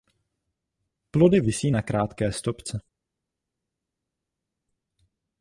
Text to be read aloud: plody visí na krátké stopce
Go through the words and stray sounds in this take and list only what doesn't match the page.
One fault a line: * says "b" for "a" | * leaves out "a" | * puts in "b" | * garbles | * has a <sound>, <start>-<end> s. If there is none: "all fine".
all fine